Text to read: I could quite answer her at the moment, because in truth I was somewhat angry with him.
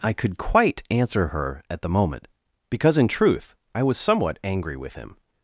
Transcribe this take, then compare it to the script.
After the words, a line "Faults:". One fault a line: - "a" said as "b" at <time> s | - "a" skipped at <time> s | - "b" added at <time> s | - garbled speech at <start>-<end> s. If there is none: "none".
I could quite answer her at the moment, because in truth I was somewhat angry with him.
Faults:
none